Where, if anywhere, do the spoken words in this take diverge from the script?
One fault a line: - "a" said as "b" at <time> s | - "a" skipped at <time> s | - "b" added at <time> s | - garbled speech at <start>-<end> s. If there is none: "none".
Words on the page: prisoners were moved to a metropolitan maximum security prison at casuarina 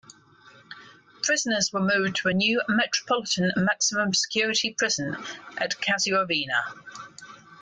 - "new" added at 2.3 s